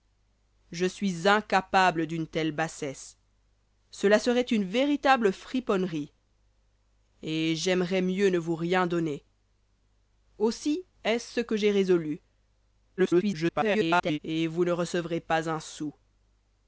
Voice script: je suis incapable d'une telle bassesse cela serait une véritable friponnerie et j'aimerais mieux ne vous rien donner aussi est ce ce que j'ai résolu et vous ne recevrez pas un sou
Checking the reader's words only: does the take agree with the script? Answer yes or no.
no